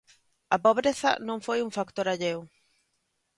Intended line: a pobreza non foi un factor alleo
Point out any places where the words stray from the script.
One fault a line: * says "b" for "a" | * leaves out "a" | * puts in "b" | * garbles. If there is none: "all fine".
all fine